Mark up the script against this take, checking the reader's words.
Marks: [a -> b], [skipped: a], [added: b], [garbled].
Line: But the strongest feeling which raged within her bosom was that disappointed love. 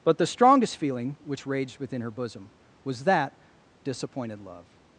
But the strongest feeling which raged within her bosom was that disappointed love.